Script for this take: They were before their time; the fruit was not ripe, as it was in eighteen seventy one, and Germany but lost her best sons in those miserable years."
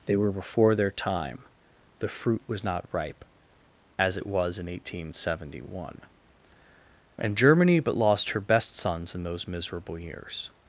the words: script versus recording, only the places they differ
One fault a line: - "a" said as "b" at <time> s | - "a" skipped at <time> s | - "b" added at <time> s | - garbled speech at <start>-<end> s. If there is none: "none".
none